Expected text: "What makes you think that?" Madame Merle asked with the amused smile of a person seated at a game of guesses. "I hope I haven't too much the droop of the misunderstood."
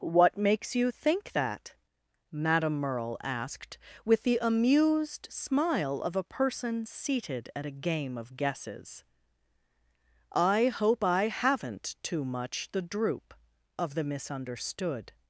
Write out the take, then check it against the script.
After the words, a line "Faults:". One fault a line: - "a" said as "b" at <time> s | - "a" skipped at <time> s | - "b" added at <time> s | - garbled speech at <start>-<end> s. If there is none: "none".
"What makes you think that?" Madame Merle asked with the amused smile of a person seated at a game of guesses. "I hope I haven't too much the droop of the misunderstood."
Faults:
none